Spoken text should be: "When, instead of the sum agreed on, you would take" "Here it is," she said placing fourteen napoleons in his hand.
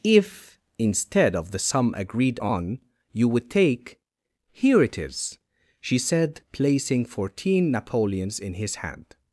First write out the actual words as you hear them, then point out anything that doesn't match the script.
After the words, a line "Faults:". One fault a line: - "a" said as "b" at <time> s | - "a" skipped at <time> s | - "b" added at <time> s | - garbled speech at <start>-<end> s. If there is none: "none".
"If, instead of the sum agreed on, you would take" "Here it is," she said placing fourteen napoleons in his hand.
Faults:
- "When" said as "If" at 0.0 s